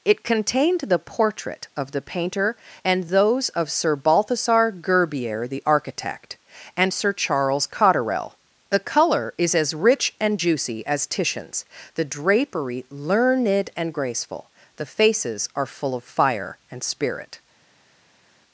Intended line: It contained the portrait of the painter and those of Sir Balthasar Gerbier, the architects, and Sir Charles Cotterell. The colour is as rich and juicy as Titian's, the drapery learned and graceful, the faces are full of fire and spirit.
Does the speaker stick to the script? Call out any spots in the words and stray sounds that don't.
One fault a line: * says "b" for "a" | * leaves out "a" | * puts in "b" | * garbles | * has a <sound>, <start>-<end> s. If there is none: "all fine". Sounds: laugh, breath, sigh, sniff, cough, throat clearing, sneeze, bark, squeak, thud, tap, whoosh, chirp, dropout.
* says "architect" for "architects"